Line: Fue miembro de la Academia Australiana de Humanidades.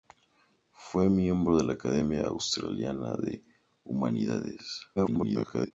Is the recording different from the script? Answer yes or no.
yes